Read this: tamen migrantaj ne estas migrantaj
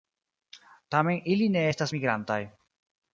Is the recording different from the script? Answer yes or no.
yes